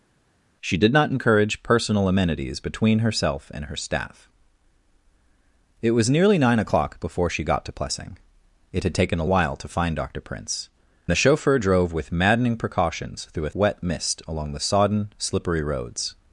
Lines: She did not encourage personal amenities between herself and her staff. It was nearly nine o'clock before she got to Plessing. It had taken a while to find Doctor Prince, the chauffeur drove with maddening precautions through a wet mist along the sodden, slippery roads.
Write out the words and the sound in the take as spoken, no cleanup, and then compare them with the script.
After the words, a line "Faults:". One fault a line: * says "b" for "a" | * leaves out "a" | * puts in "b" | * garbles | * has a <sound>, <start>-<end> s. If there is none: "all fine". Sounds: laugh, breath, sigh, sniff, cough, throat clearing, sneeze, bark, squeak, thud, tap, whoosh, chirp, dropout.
She did not encourage personal amenities between herself and her staff. It was nearly nine o'clock before she got to Plessing. It had taken a while to find Doctor Prince, the chauffeur drove with maddening precautions through a wet mist along the sodden, slippery roads.
Faults:
all fine